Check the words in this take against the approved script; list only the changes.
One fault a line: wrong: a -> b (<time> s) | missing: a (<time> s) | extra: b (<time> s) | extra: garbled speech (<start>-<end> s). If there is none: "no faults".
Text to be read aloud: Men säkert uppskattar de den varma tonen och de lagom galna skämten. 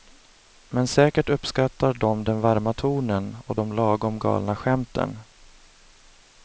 no faults